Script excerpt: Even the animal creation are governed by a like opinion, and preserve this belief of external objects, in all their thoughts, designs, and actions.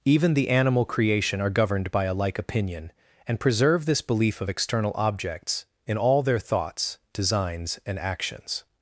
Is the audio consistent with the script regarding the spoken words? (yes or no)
yes